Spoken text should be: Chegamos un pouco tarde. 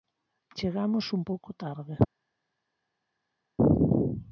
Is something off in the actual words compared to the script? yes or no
no